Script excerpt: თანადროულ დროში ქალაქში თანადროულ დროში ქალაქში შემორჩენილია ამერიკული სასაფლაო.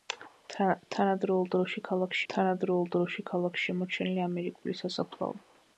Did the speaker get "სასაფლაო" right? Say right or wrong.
right